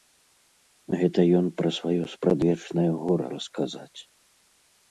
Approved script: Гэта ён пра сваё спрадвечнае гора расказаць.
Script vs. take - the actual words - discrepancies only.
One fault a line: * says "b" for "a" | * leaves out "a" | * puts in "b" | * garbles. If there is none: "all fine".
all fine